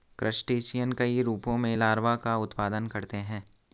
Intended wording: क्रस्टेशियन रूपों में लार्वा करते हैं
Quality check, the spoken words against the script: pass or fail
fail